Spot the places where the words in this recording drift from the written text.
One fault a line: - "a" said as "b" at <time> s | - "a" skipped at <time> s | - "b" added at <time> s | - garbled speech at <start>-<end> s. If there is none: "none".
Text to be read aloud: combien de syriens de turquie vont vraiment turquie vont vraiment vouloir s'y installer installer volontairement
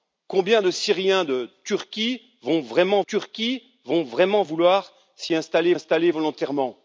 none